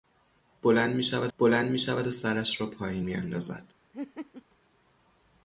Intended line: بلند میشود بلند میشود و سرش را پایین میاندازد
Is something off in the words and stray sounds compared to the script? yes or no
yes